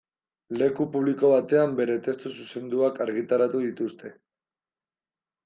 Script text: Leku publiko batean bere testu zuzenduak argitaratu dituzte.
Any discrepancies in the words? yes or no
no